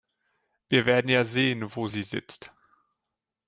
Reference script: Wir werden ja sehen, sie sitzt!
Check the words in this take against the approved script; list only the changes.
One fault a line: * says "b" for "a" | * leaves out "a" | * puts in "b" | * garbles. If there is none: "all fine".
* puts in "wo"